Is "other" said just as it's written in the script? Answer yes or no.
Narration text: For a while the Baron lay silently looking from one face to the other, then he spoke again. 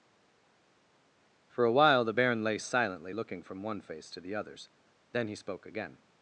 no